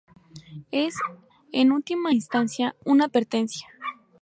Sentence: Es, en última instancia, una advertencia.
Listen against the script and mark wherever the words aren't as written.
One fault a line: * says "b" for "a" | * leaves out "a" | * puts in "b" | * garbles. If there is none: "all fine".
all fine